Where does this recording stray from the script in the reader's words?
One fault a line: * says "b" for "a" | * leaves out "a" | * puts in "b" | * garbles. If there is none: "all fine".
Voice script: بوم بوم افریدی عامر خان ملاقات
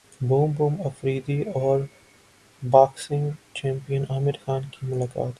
* puts in "اور باکسنگ چیمپئن"
* puts in "کی"